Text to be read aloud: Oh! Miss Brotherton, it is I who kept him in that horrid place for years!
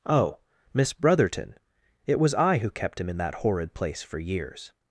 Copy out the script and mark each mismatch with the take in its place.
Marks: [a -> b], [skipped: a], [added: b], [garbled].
Oh! Miss Brotherton, it [is -> was] I who kept him in that horrid place for years!